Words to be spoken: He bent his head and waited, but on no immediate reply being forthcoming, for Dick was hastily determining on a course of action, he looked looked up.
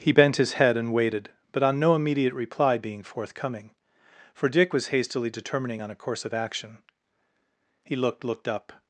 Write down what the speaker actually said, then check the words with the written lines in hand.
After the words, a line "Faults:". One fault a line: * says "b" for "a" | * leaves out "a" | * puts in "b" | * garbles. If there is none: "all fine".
He bent his head and waited, but on no immediate reply being forthcoming, for Dick was hastily determining on a course of action, he looked looked up.
Faults:
all fine